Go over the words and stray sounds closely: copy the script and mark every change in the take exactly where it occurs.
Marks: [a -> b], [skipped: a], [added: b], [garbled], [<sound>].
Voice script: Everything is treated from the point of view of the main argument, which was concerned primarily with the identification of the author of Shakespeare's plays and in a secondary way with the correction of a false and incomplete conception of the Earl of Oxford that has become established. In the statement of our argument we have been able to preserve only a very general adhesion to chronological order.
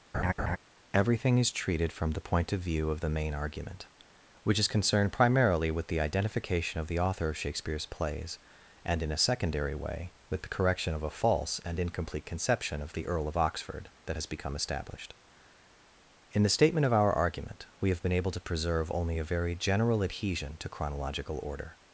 [laugh] Everything is treated from the point of view of the main argument, which [was -> is] concerned primarily with the identification of the author of Shakespeare's plays and in a secondary way with the correction of a false and incomplete conception of the Earl of Oxford that has become established. In the statement of our argument we have been able to preserve only a very general adhesion to chronological order.